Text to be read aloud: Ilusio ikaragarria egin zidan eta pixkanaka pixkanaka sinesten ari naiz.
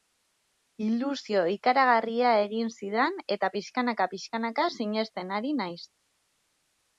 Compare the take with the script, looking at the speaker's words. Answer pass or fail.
pass